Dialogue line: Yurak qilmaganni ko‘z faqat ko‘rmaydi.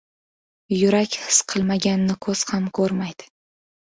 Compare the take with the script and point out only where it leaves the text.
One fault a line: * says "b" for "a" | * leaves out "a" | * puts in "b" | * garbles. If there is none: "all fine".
* puts in "his"
* says "ham" for "faqat"